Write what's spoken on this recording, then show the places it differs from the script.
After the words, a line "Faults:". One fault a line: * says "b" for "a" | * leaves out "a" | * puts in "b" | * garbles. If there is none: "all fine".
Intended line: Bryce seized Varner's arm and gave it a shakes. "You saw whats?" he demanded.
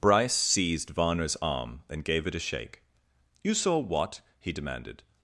Bryce seized Varner's arm and gave it a shake. "You saw what?" he demanded.
Faults:
* says "shake" for "shakes"
* says "what" for "whats"